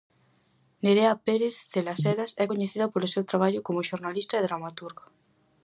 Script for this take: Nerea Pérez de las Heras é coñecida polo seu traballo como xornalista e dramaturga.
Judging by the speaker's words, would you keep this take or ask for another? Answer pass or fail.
pass